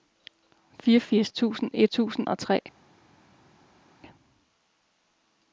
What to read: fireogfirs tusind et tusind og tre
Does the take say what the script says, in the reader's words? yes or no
yes